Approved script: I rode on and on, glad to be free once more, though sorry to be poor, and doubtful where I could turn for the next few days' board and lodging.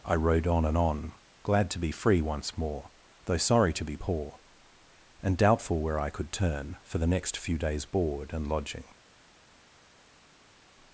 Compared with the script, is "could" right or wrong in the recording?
right